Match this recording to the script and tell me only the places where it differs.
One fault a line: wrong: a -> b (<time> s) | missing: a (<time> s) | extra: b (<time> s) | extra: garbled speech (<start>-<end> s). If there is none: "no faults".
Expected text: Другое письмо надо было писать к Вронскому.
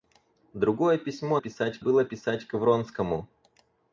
wrong: надо -> писать (1.4 s)